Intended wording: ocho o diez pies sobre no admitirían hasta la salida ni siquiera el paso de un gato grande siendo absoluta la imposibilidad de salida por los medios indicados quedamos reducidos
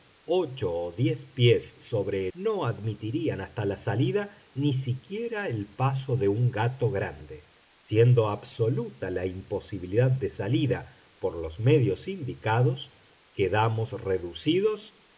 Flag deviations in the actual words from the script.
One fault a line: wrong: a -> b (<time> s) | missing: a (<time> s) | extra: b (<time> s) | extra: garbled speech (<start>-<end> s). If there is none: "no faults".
no faults